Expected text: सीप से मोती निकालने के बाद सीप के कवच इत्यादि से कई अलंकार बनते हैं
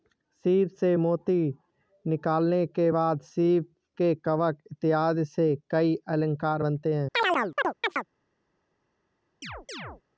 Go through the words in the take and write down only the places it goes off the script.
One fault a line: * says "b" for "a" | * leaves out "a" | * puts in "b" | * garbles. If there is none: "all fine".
all fine